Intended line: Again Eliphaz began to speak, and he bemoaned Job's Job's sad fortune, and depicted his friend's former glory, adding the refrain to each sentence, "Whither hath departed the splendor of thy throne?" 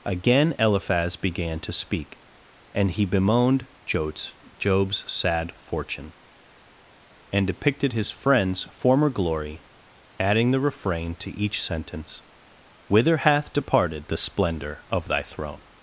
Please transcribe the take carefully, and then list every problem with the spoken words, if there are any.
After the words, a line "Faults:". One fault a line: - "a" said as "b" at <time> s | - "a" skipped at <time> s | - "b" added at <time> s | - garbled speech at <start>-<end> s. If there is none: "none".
Again Eliphaz began to speak, and he bemoaned Job's Job's sad fortune, and depicted his friend's former glory, adding the refrain to each sentence, "Whither hath departed the splendor of thy throne?"
Faults:
none